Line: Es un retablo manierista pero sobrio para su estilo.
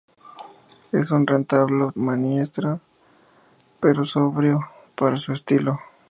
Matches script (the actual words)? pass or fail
pass